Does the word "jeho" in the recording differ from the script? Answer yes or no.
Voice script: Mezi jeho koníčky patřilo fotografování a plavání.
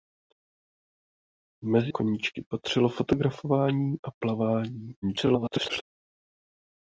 yes